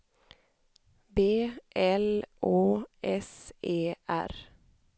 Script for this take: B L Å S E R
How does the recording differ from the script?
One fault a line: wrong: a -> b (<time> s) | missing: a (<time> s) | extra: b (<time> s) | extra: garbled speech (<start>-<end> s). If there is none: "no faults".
no faults